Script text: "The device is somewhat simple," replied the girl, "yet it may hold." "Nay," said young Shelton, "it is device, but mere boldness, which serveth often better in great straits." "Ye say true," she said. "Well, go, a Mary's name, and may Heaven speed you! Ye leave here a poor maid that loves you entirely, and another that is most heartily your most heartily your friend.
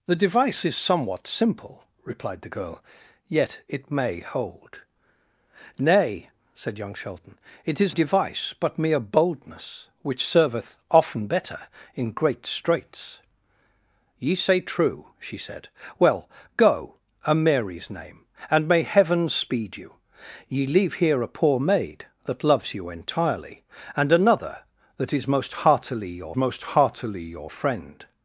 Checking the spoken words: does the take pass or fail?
pass